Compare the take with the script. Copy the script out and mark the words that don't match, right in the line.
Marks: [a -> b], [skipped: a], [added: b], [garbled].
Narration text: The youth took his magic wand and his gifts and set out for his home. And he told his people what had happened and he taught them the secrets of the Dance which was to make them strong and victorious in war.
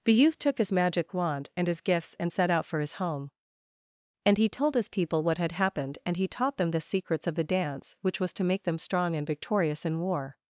The youth took his magic wand and his gifts and set out for his home. And he told his people what had happened and he taught them the secrets of the Dance which was to make them strong and victorious in war.